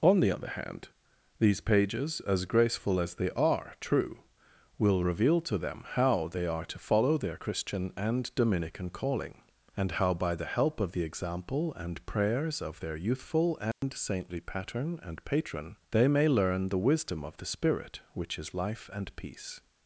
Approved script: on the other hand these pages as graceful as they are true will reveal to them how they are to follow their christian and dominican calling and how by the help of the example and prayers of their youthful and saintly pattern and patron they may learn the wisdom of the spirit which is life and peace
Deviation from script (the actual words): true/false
false